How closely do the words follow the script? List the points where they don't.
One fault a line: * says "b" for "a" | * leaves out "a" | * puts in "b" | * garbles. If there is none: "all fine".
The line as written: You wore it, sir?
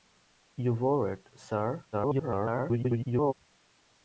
* garbles